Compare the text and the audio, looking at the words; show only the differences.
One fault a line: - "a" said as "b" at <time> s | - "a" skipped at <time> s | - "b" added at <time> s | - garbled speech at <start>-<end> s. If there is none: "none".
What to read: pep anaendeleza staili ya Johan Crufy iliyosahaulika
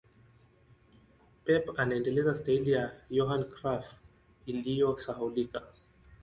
none